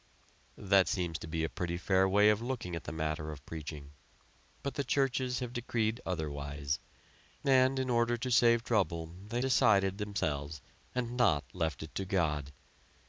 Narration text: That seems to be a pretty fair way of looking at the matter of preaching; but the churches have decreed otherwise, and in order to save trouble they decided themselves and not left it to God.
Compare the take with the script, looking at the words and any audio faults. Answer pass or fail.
pass